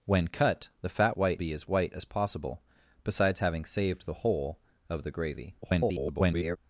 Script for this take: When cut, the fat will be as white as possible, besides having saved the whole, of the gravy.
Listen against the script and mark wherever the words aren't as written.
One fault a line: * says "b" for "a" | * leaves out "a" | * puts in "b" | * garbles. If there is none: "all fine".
* says "white" for "will"
* garbles